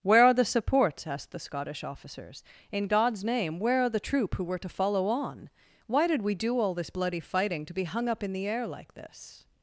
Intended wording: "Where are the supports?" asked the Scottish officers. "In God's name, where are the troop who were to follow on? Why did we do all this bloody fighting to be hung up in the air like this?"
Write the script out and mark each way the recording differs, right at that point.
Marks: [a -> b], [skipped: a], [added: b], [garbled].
"Where are the supports?" asked the Scottish officers. "In God's name, where are the troop who were to follow on? Why did we do all this bloody fighting to be hung up in the air like this?"